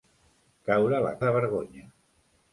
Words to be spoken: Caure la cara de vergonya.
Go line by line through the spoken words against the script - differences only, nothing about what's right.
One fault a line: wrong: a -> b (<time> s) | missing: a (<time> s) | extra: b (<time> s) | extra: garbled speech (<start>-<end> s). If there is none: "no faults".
missing: cara (1.1 s)